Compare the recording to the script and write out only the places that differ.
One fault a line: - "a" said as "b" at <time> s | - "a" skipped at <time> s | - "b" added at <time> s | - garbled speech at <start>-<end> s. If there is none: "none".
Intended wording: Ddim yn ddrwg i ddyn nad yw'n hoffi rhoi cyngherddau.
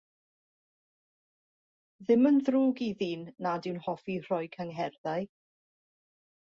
none